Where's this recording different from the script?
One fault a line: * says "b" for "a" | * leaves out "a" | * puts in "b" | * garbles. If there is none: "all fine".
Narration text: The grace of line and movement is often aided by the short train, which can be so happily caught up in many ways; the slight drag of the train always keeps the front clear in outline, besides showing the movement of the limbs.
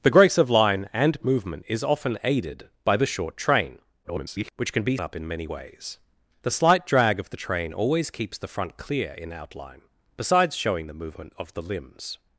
* garbles
* leaves out "so happily caught"